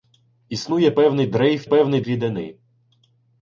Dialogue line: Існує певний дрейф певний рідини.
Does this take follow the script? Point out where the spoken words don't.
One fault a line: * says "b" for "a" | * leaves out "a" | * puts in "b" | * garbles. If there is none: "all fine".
all fine